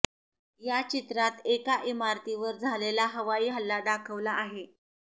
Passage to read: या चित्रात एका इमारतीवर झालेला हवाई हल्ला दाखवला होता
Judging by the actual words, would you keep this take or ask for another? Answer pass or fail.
fail